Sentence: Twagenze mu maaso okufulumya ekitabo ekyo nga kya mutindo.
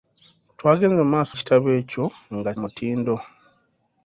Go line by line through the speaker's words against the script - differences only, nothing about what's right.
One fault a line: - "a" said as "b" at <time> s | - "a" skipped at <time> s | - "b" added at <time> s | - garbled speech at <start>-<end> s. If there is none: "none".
- "okufulumya" skipped at 1.3 s
- "kya" skipped at 2.5 s